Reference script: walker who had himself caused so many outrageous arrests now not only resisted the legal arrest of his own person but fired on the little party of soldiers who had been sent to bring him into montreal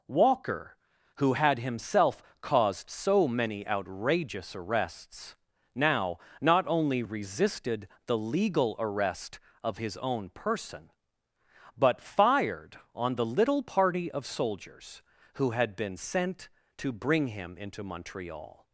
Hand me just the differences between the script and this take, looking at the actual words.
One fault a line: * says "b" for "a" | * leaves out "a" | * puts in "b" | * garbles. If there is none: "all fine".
all fine